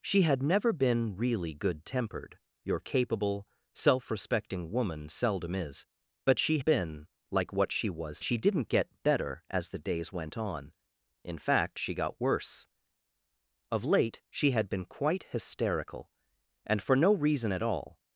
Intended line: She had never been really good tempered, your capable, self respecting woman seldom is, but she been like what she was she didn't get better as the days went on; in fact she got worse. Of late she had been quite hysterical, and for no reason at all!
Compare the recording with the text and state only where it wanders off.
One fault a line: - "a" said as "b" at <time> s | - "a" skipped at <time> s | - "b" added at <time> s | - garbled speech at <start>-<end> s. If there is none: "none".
none